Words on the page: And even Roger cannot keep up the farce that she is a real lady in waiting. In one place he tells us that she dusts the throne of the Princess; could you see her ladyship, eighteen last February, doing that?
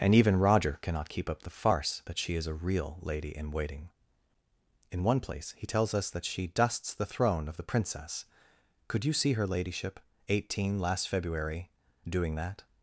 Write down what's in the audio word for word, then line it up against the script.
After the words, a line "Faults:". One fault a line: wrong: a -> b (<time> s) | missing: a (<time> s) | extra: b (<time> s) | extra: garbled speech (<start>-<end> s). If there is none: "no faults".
And even Roger cannot keep up the farce that she is a real lady in waiting. In one place he tells us that she dusts the throne of the Princess; could you see her ladyship, eighteen last February, doing that?
Faults:
no faults